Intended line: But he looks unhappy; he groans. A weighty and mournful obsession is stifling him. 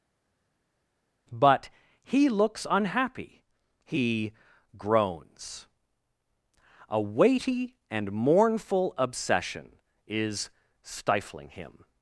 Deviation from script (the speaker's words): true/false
false